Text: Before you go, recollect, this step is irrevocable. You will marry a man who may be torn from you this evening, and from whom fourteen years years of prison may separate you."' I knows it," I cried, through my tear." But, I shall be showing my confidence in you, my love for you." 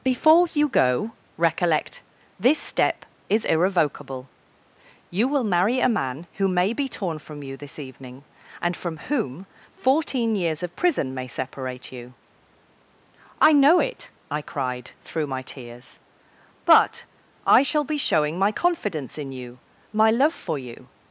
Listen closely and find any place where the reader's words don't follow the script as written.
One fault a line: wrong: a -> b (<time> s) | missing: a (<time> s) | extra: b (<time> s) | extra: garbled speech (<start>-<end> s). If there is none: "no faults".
missing: years (10.6 s)
wrong: knows -> know (13.5 s)
wrong: tear -> tears (15.4 s)